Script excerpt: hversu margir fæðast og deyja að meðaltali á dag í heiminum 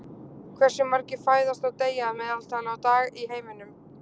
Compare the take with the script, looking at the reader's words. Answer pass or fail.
pass